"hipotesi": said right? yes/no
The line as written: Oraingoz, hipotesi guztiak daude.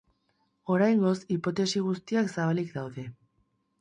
yes